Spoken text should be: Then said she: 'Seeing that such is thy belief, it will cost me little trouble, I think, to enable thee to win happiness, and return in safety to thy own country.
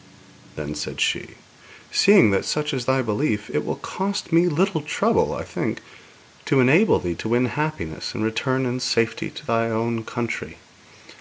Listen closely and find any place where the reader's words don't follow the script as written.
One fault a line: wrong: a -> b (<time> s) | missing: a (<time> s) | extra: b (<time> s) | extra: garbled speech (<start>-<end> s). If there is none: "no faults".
no faults